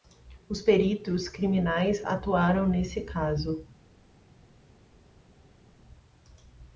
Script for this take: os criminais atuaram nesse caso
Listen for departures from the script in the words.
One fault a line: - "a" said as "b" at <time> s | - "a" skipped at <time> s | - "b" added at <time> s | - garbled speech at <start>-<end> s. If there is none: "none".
- "peritos" added at 0.6 s